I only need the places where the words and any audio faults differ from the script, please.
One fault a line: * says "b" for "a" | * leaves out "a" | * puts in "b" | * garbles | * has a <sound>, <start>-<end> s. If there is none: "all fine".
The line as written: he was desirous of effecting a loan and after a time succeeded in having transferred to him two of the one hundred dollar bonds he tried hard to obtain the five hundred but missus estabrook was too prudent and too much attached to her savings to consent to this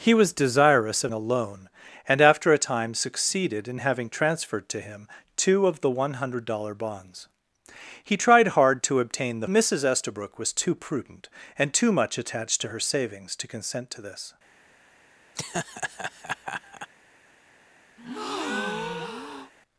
* leaves out "effecting"
* leaves out "five hundred but"
* has a laugh, 15.3-16.9 s
* has a breath, 18.0-19.5 s